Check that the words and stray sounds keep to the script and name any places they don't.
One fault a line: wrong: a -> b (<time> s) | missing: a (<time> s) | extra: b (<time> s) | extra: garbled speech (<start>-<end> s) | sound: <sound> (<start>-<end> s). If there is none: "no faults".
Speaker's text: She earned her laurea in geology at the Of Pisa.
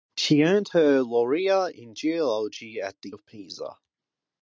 no faults